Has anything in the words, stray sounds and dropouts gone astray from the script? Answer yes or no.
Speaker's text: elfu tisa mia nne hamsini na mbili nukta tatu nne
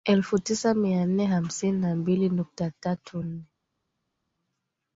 no